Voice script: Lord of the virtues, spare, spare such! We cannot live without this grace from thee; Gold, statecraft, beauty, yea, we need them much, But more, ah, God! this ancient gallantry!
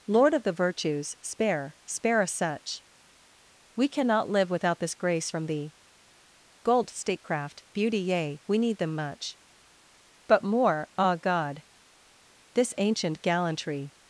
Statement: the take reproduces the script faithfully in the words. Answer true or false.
false